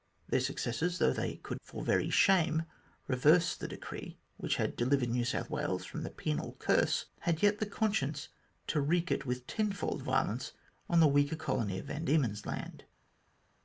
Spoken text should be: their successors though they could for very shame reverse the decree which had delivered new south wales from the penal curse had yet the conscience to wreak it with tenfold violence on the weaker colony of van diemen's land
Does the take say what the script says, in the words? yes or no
yes